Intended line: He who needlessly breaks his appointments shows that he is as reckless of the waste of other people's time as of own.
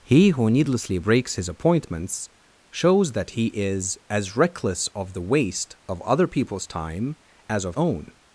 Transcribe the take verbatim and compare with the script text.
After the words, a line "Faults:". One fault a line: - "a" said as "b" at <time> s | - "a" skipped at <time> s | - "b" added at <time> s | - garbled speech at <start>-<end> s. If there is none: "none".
He who needlessly breaks his appointments shows that he is as reckless of the waste of other people's time as of own.
Faults:
none